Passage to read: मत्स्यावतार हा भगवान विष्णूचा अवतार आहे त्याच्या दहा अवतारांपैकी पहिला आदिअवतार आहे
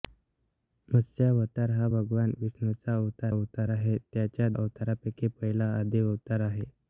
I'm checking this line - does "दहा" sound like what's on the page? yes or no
no